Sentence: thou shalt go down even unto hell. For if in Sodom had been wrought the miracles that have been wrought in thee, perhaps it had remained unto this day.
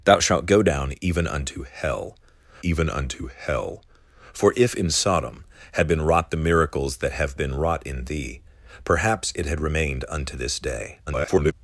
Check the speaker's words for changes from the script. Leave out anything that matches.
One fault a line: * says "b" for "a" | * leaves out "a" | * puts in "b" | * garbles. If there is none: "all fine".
* puts in "even unto hell"
* garbles